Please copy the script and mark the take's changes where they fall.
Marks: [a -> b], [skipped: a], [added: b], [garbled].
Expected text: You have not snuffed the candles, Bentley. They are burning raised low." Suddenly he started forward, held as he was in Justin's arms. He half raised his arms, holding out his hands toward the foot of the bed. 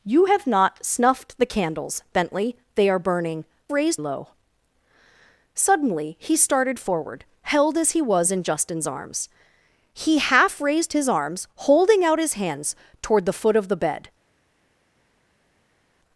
You have not snuffed the candles, Bentley. They are burning raised low." Suddenly he started forward, held as he was in Justin's arms. He half raised his arms, holding out his hands toward the foot of the bed.